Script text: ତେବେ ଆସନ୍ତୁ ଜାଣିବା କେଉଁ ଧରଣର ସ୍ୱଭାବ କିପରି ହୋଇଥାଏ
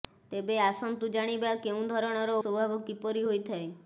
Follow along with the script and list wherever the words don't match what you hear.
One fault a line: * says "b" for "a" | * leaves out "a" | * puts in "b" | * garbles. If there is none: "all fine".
all fine